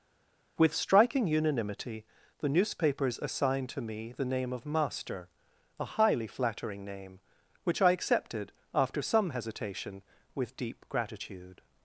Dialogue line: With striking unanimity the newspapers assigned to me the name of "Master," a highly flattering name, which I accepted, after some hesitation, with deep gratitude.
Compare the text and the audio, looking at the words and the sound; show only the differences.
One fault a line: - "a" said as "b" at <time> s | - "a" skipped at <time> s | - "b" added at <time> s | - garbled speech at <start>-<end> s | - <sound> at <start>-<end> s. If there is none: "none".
none